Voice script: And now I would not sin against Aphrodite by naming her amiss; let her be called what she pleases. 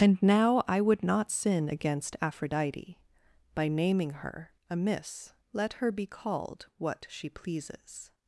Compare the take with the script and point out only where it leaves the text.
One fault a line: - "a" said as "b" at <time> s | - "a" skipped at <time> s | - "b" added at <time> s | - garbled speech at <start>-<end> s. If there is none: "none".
none